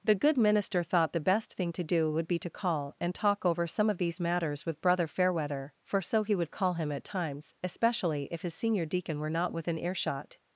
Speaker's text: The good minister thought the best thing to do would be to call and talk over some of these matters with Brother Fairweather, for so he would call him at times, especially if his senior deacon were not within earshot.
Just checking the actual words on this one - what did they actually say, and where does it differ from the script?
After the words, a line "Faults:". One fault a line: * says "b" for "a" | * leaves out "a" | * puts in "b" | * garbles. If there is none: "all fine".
The good minister thought the best thing to do would be to call and talk over some of these matters with Brother Fairweather, for so he would call him at times, especially if his senior deacon were not within earshot.
Faults:
all fine